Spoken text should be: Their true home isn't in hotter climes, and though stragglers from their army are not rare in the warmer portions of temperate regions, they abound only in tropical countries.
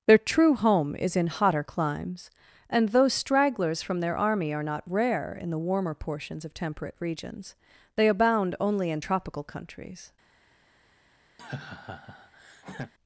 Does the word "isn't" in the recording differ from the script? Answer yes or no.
yes